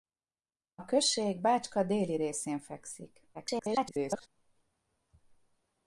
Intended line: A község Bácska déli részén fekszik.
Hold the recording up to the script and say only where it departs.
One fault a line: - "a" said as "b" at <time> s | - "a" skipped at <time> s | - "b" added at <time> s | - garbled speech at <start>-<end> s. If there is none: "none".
- garbled speech at 3.3-4.3 s